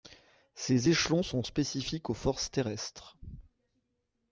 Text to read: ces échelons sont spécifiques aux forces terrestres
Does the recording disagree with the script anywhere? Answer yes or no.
no